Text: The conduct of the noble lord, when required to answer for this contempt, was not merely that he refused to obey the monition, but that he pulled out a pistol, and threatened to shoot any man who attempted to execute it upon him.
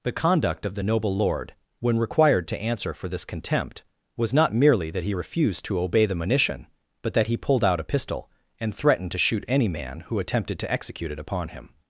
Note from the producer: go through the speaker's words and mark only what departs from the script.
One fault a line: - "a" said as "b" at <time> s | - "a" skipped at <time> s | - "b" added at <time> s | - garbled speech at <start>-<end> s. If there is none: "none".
none